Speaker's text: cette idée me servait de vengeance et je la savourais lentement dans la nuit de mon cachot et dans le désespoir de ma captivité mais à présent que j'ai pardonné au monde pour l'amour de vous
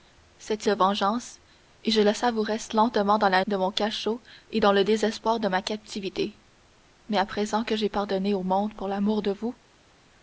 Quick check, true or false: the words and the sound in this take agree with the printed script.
false